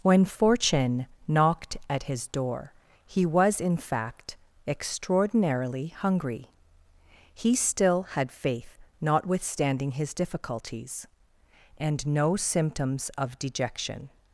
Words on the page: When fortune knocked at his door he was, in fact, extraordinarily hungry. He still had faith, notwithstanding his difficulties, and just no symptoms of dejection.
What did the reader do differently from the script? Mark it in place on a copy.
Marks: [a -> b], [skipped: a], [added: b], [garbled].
When fortune knocked at his door he was, in fact, extraordinarily hungry. He still had faith, notwithstanding his difficulties, and [skipped: just] no symptoms of dejection.